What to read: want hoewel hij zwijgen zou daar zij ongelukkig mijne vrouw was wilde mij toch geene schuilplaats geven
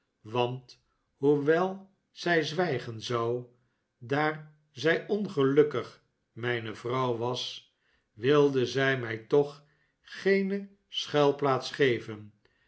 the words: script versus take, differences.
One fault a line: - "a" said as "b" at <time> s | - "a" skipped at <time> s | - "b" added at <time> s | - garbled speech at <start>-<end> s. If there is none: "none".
- "hij" said as "zij" at 2.1 s
- "zij" added at 8.7 s